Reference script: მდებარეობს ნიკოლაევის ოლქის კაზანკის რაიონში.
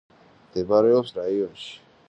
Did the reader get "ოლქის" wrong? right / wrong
wrong